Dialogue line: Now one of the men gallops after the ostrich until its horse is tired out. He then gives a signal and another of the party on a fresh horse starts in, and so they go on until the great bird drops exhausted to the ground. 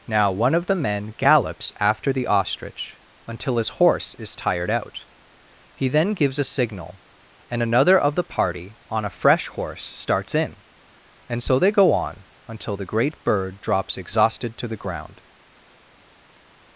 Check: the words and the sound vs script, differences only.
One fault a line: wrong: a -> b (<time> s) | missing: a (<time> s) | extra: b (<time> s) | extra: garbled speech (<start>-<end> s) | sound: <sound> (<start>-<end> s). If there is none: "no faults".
wrong: its -> his (3.6 s)